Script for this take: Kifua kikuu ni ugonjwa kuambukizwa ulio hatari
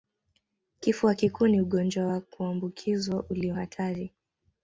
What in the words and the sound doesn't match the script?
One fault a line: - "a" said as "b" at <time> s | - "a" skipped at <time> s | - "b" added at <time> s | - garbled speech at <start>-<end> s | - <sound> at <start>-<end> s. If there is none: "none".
- "wa" added at 2.0 s